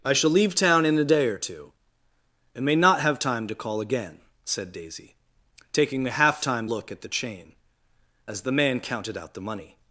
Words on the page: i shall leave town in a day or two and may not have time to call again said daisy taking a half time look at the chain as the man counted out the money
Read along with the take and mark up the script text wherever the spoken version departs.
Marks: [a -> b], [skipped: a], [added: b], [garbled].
i shall leave town in a day or two and may not have time to call again said daisy taking a half time look at the chain as the man counted out the money